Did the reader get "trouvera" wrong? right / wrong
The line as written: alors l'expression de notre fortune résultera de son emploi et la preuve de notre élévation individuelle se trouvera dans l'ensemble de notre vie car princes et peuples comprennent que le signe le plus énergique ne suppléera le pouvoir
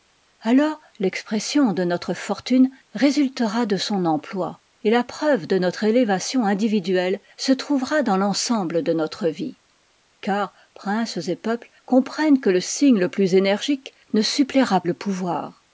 right